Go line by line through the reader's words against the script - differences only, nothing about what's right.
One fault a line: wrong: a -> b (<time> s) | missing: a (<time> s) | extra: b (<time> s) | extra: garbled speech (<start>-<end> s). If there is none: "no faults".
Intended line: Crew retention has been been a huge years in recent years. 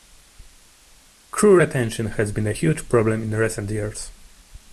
missing: been (2.5 s)
wrong: years -> problem (2.9 s)